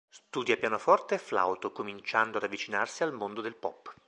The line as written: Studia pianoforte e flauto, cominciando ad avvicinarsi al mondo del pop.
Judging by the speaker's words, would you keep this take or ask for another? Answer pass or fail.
pass